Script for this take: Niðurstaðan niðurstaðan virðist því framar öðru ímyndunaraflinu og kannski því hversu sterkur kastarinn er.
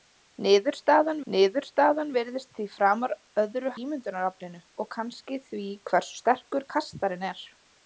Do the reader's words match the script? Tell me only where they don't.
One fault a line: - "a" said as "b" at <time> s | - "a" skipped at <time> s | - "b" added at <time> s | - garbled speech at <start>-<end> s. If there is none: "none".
none